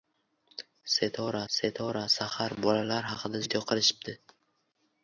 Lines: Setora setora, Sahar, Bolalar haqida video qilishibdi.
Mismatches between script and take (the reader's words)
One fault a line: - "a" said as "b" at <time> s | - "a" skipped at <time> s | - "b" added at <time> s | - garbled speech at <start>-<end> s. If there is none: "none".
none